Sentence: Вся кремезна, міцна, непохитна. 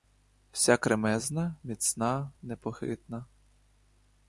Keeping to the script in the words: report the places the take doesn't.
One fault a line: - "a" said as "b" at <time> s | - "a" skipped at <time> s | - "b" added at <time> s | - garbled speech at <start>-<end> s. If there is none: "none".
none